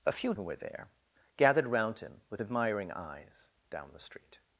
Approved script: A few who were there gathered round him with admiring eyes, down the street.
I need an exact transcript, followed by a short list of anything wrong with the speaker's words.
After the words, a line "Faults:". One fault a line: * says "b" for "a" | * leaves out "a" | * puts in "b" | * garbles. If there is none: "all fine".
A few who were there gathered round him with admiring eyes, down the street.
Faults:
all fine